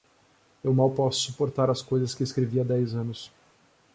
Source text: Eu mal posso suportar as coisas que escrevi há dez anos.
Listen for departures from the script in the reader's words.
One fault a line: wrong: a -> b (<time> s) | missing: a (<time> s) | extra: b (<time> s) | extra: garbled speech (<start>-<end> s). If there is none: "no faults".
no faults